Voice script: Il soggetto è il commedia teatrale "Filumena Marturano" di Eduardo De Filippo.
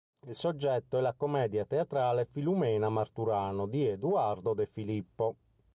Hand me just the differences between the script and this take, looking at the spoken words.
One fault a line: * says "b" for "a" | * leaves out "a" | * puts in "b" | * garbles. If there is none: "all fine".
* says "la" for "il"